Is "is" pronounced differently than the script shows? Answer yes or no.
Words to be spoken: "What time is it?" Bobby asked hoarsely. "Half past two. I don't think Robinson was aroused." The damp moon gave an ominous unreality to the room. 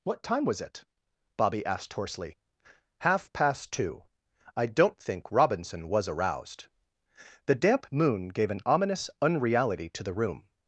yes